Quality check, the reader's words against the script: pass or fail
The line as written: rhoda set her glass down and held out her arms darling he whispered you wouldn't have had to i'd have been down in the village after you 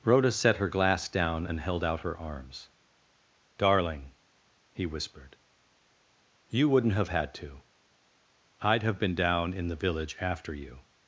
pass